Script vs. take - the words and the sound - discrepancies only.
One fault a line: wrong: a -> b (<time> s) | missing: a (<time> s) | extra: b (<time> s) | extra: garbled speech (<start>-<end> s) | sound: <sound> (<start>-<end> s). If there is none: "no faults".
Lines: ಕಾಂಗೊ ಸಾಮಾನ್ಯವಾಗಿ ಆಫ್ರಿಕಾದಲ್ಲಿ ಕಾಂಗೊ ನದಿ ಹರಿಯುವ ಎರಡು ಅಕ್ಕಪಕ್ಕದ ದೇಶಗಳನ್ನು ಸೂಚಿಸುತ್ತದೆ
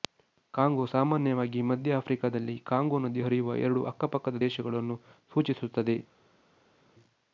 extra: ಮಧ್ಯ (1.7 s)